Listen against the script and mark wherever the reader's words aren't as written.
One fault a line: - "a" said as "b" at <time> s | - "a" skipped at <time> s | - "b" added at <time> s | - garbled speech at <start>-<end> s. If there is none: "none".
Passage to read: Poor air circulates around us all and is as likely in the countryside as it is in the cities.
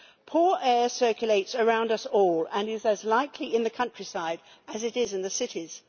none